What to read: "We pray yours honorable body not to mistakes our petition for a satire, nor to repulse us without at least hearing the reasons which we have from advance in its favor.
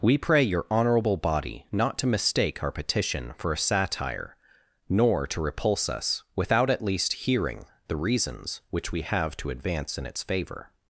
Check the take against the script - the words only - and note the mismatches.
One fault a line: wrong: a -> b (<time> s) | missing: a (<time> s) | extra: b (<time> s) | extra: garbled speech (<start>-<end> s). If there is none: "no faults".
wrong: yours -> your (0.4 s)
wrong: mistakes -> mistake (2.1 s)
wrong: from -> to (9.4 s)